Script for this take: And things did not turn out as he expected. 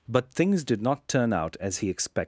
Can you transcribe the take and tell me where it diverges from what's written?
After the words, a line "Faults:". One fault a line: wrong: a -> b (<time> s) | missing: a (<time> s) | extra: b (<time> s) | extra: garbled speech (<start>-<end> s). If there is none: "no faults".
But things did not turn out as he expected.
Faults:
wrong: And -> But (0.1 s)